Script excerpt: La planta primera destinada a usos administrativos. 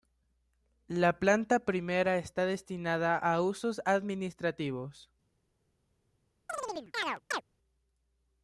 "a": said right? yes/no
yes